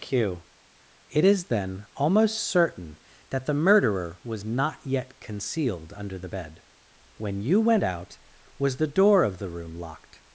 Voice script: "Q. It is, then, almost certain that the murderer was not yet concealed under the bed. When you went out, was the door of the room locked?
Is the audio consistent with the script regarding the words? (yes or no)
yes